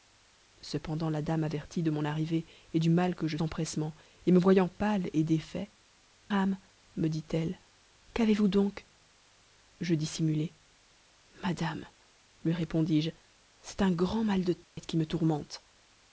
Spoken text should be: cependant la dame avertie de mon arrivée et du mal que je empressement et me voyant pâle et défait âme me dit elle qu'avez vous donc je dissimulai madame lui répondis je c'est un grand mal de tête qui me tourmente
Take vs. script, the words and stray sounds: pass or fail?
fail